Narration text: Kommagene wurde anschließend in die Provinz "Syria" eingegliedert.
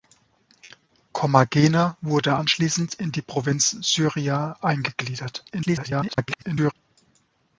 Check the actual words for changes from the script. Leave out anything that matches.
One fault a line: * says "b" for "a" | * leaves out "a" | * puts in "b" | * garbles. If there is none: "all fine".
* garbles